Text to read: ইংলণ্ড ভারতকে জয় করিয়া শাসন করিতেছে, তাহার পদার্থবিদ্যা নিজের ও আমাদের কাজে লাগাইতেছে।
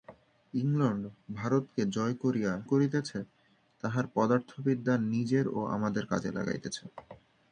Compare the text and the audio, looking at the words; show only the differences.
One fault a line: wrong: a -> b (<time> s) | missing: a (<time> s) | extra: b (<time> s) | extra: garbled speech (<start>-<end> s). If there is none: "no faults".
missing: শাসন (2.5 s)